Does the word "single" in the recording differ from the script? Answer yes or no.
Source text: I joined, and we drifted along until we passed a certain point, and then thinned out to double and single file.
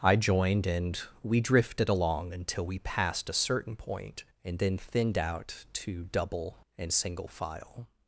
no